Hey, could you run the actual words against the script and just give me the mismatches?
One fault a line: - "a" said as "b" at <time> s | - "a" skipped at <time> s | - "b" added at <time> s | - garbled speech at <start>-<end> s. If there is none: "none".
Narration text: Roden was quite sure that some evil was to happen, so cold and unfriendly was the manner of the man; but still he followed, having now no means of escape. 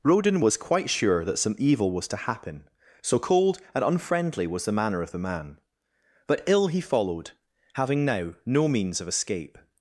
- "still" said as "ill" at 6.5 s